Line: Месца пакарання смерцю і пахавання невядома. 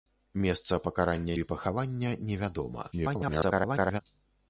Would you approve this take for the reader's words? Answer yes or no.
no